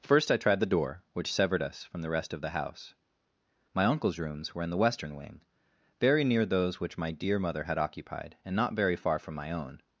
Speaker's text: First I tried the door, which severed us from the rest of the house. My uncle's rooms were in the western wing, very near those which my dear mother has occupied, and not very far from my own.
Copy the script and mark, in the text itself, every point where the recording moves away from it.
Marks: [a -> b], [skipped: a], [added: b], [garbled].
First I tried the door, which severed us from the rest of the house. My uncle's rooms were in the western wing, very near those which my dear mother [has -> had] occupied, and not very far from my own.